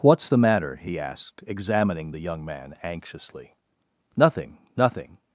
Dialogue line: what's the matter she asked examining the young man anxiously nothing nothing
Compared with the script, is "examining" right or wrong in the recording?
right